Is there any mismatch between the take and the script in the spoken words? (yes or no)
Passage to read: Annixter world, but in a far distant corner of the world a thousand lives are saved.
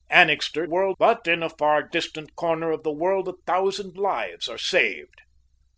no